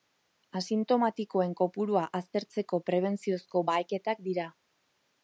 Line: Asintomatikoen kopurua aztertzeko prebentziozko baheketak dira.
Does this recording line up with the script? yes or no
yes